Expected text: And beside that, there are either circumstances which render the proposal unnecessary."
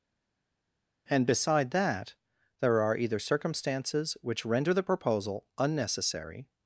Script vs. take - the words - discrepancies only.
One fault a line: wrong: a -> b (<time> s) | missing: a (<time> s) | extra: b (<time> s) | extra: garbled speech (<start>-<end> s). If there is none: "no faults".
no faults